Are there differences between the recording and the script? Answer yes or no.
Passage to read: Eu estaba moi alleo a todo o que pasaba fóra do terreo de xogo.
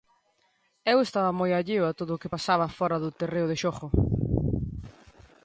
no